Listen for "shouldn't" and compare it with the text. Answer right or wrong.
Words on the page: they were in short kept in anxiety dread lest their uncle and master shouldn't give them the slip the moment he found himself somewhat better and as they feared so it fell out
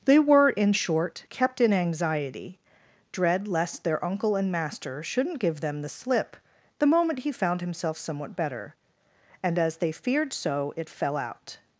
right